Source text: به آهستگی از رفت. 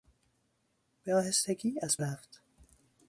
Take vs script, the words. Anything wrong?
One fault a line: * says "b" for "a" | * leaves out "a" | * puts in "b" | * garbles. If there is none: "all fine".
all fine